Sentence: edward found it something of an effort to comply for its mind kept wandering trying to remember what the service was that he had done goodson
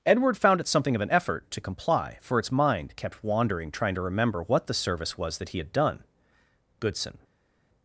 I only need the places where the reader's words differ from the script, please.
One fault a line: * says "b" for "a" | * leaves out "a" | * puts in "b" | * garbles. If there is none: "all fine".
all fine